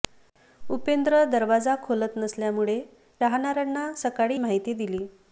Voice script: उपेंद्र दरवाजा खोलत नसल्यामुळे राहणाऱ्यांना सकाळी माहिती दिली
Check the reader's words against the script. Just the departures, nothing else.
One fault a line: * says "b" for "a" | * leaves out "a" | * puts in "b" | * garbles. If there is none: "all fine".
all fine